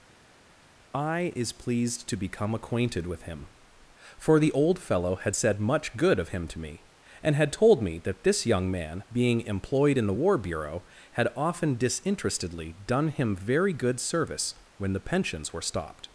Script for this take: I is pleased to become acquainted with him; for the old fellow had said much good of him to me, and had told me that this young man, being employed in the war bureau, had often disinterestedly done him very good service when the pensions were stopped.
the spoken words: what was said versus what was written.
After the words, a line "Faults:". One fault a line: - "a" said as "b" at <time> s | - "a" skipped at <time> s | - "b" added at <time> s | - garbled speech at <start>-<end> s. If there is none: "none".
I is pleased to become acquainted with him; for the old fellow had said much good of him to me, and had told me that this young man, being employed in the war bureau, had often disinterestedly done him very good service when the pensions were stopped.
Faults:
none